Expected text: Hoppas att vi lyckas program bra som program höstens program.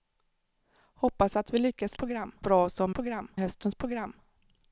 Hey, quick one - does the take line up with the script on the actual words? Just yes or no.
yes